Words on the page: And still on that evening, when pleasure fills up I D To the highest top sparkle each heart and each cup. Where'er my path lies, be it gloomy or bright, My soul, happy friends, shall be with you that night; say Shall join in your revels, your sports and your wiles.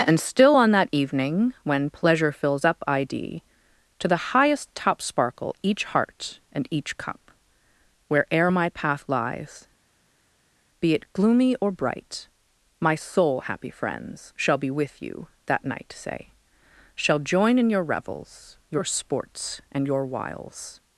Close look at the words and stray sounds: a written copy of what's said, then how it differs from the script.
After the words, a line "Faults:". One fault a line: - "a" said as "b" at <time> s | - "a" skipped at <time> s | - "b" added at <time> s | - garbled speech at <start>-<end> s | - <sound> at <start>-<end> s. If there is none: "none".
And still on that evening, when pleasure fills up I D To the highest top sparkle each heart and each cup. Where'er my path lies, be it gloomy or bright, My soul, happy friends, shall be with you that night; say Shall join in your revels, your sports and your wiles.
Faults:
none